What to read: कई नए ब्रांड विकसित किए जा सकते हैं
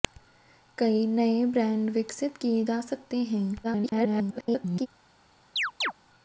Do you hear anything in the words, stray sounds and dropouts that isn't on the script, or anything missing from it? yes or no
yes